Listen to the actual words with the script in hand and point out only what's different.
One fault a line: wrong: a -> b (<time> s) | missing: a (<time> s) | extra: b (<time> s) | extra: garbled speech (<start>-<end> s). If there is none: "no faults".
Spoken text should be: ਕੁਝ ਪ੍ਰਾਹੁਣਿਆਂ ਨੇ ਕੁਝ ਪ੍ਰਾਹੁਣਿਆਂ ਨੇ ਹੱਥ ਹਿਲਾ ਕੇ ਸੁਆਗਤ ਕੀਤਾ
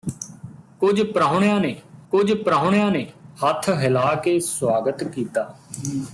no faults